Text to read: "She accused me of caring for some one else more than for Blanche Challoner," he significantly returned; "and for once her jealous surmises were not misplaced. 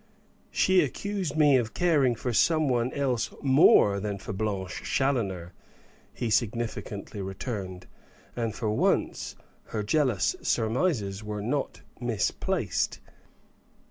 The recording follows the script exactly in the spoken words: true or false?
true